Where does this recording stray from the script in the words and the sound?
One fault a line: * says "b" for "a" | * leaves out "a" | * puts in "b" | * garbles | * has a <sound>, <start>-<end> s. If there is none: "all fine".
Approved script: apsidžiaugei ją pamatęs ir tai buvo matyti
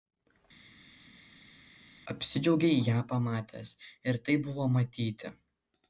all fine